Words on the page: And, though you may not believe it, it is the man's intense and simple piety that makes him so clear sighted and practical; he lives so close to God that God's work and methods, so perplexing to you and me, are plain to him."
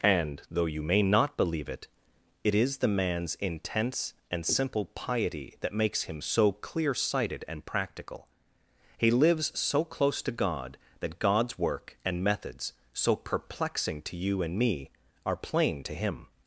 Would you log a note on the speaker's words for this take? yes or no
no